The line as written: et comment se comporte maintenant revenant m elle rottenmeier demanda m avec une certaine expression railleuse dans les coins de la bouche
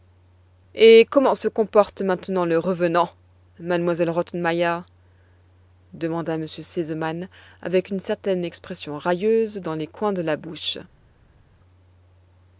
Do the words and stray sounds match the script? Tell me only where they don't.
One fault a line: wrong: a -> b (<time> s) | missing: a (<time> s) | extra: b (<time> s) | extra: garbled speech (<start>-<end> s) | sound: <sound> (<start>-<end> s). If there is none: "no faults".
extra: le (2.5 s)
extra: r sesemann (6.5 s)